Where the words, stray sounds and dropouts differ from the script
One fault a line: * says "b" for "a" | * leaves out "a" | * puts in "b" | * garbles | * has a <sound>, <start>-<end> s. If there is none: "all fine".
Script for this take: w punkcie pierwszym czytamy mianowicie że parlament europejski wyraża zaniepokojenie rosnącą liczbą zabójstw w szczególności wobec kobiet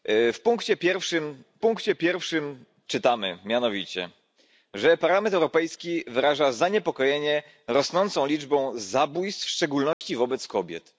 * puts in "punkcie pierwszym"
* has a dropout, 9.9-10.0 s